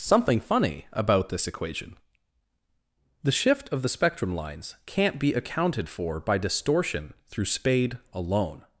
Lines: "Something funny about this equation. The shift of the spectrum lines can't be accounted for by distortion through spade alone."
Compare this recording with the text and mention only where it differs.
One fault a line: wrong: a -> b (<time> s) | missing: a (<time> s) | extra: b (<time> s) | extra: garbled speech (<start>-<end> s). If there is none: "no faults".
no faults